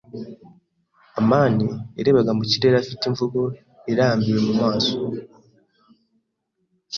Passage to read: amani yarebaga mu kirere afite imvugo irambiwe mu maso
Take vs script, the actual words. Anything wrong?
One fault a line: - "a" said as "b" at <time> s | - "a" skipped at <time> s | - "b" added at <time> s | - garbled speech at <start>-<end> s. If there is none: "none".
none